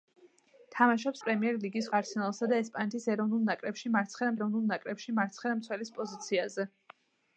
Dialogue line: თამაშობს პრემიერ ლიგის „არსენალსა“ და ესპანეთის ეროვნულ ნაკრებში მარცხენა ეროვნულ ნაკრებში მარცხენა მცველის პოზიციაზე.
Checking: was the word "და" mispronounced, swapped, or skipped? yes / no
no